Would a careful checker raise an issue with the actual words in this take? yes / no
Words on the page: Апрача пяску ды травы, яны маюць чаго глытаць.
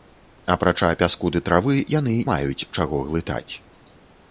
no